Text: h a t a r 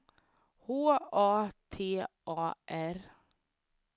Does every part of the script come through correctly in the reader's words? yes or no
yes